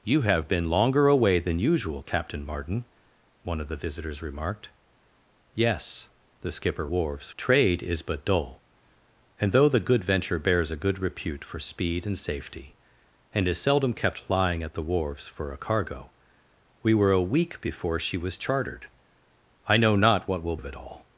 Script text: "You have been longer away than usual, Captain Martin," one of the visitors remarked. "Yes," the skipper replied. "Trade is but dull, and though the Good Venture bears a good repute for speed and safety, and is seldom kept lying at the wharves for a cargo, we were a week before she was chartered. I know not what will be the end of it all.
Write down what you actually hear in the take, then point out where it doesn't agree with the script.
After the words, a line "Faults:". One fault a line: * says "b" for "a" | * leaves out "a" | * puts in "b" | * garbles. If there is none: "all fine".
"You have been longer away than usual, Captain Martin," one of the visitors remarked. "Yes," the skipper wharves. "Trade is but dull, and though the Good Venture bears a good repute for speed and safety, and is seldom kept lying at the wharves for a cargo, we were a week before she was chartered. I know not what will of it all.
Faults:
* says "wharves" for "replied"
* leaves out "be the end"